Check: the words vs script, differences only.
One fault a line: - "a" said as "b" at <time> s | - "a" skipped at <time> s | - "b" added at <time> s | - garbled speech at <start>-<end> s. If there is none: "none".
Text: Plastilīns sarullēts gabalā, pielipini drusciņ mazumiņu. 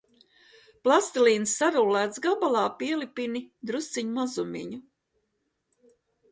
none